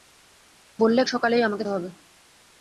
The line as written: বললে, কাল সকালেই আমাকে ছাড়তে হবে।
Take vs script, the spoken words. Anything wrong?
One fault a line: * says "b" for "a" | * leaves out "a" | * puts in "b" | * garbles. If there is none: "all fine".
* leaves out "কাল"
* leaves out "ছাড়তে"